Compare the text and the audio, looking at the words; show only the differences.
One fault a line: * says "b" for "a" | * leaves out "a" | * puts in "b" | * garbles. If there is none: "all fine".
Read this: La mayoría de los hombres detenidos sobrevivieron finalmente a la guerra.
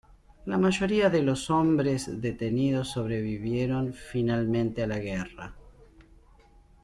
all fine